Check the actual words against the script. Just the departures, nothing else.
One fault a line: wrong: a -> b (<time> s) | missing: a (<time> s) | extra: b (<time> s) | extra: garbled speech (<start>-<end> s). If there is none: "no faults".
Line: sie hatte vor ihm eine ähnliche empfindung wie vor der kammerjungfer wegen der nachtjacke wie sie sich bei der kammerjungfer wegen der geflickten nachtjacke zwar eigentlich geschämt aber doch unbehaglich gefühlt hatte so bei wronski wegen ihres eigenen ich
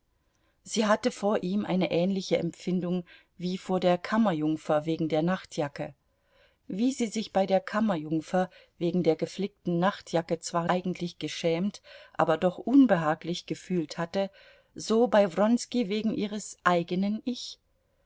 no faults